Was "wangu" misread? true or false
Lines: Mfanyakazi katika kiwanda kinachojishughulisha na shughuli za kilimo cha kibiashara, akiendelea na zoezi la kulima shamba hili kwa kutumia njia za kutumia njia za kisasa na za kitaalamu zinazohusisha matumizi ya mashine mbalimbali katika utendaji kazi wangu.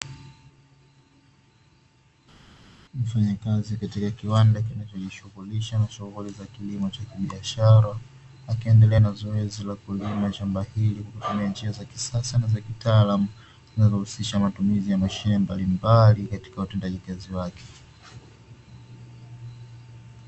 true